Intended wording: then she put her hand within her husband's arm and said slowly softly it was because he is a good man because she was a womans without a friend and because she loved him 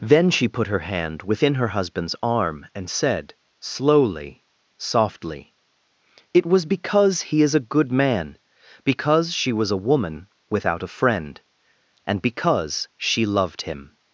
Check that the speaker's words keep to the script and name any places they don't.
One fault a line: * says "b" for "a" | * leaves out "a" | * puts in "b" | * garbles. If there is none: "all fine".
* says "woman" for "womans"